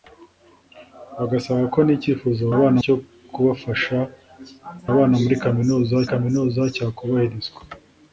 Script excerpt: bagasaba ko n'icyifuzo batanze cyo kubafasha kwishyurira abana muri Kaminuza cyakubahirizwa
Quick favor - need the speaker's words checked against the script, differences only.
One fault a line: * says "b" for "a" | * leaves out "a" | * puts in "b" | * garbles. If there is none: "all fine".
* says "abana" for "batanze"
* leaves out "kwishyurira"
* puts in "Kaminuza"